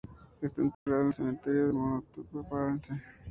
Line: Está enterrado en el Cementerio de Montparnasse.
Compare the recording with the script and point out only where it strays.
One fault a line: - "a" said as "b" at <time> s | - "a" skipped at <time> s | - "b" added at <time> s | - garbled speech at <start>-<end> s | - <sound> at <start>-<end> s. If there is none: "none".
- dropout at 0.7-0.9 s